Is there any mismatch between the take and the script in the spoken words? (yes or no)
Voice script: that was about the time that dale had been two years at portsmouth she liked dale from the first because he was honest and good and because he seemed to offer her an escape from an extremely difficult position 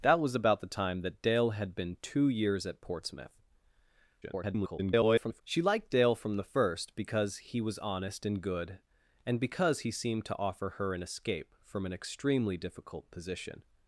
yes